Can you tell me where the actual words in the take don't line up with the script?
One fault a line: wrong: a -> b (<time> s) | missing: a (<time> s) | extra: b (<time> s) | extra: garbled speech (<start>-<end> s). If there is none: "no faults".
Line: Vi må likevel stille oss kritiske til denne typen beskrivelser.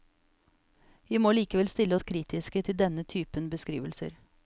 no faults